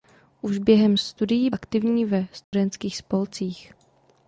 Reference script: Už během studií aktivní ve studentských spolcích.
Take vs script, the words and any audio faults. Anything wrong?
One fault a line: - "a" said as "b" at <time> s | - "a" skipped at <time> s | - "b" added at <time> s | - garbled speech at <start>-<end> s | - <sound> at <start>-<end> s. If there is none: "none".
- dropout at 2.4-2.5 s